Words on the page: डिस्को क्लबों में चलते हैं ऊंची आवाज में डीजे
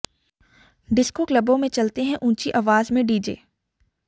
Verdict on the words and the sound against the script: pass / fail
pass